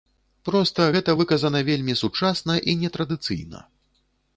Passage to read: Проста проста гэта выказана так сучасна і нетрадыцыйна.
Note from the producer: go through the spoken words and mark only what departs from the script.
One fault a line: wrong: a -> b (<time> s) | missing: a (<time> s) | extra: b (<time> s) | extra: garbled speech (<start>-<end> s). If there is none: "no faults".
missing: проста (0.9 s)
wrong: так -> вельмі (1.7 s)